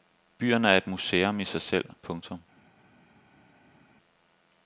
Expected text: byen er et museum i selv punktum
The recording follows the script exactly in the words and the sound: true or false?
false